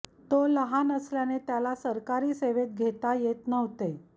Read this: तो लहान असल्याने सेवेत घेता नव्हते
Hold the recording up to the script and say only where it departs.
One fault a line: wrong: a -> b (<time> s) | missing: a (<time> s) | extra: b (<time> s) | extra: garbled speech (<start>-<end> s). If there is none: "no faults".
extra: त्याला सरकारी (1.4 s)
extra: येत (3.2 s)